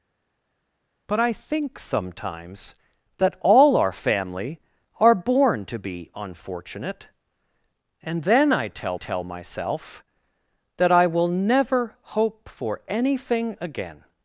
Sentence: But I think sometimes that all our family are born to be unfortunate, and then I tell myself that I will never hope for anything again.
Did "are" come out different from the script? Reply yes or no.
no